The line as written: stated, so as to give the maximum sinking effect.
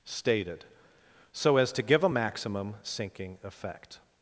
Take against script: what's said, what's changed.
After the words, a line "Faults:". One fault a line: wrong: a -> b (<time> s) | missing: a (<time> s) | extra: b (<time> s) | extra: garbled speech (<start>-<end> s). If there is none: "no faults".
stated, so as to give a maximum sinking effect.
Faults:
wrong: the -> a (2.0 s)